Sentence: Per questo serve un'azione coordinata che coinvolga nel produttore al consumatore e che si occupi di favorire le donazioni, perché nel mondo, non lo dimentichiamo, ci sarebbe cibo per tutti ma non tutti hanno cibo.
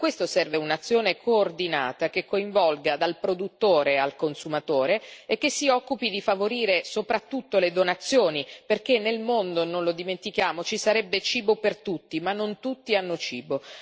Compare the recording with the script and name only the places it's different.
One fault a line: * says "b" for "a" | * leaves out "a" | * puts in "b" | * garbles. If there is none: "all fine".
* says "dal" for "nel"
* puts in "soprattutto"